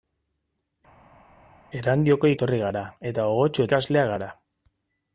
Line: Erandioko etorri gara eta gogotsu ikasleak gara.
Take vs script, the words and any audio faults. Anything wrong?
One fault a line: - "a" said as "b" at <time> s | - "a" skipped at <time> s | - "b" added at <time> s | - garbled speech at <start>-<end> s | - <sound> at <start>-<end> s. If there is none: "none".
none